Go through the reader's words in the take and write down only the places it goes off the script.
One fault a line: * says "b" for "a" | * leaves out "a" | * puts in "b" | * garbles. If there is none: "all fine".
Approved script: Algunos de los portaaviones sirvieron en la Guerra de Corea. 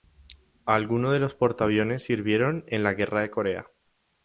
all fine